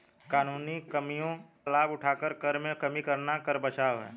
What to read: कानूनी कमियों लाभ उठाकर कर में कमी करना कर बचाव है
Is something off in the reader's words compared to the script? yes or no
no